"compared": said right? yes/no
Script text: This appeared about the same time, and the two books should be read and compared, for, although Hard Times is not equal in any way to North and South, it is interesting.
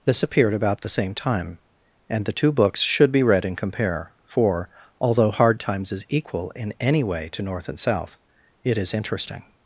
no